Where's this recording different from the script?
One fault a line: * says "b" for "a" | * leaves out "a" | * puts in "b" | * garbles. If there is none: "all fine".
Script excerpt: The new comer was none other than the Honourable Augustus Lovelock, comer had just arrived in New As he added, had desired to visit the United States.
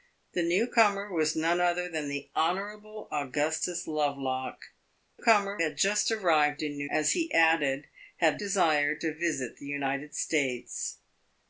all fine